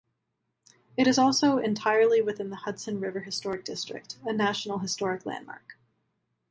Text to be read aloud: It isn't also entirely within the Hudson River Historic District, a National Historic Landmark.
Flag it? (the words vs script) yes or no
yes